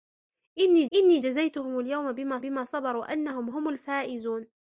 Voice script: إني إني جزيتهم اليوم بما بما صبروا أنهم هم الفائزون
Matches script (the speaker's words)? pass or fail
pass